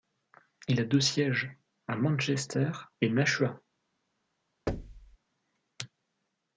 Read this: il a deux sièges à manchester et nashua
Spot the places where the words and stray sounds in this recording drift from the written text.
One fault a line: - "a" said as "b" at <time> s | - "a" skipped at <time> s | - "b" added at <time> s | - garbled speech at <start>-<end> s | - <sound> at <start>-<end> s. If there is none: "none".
- thud at 4.7-5.2 s